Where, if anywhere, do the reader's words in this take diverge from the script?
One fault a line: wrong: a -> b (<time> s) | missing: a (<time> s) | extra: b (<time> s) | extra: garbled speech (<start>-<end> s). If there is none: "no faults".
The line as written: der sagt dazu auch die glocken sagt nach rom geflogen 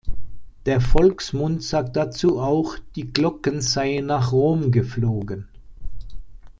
extra: volksmund (0.8 s)
wrong: sagt -> seien (3.6 s)